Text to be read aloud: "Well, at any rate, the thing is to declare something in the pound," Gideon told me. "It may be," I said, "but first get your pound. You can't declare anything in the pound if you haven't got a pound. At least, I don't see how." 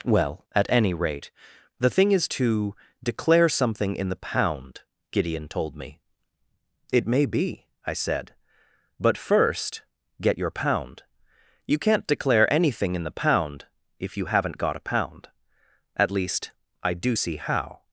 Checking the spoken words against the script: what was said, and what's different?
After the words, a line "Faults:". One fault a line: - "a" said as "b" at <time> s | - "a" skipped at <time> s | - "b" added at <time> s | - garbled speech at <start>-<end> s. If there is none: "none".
"Well, at any rate, the thing is to declare something in the pound," Gideon told me. "It may be," I said, "but first get your pound. You can't declare anything in the pound if you haven't got a pound. At least, I do see how."
Faults:
- "don't" said as "do" at 16.9 s